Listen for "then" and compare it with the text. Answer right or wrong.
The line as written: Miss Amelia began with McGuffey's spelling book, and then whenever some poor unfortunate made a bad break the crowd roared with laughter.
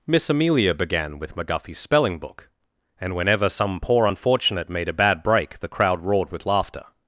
wrong